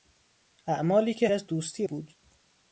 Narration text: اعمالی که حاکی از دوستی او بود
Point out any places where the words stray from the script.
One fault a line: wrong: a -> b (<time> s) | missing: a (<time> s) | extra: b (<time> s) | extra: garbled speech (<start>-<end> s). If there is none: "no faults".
missing: حاکی (1.3 s)
missing: او (1.8 s)